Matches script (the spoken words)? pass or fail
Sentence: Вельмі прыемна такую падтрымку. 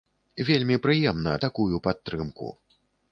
pass